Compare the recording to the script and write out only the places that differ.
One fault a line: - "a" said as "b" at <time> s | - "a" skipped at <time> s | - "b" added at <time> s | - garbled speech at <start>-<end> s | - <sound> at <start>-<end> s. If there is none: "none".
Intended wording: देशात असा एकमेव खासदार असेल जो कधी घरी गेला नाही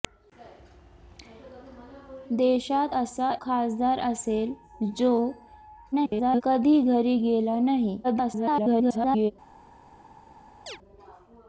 - "एकमेव" skipped at 3.3 s
- garbled speech at 5.9-6.4 s
- garbled speech at 8.0-9.3 s
- chirp at 10.7-10.8 s